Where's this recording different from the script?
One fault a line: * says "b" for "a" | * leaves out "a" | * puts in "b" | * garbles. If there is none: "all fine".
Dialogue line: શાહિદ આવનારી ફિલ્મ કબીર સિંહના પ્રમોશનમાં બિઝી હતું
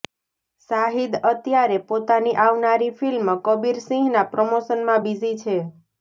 * puts in "અત્યારે પોતાની"
* says "છે" for "હતું"